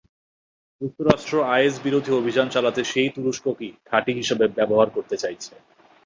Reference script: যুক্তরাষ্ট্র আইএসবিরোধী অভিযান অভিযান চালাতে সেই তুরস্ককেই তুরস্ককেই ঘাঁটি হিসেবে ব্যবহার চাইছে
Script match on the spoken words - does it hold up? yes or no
no